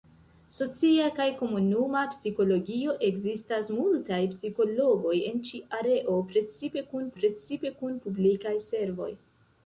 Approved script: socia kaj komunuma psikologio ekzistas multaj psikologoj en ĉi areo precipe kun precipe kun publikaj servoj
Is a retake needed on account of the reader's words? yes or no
no